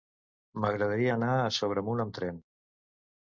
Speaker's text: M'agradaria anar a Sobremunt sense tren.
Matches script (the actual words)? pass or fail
fail